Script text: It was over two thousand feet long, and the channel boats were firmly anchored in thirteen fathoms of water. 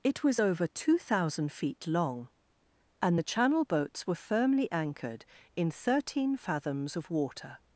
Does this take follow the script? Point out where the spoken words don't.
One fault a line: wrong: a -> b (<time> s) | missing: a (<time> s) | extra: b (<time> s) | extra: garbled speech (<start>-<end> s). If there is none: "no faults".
no faults